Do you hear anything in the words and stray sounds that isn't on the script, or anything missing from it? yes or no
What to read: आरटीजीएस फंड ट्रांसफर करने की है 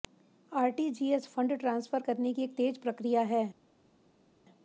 yes